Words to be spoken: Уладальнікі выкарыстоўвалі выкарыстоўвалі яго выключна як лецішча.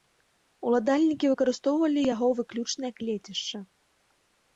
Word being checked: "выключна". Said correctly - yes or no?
yes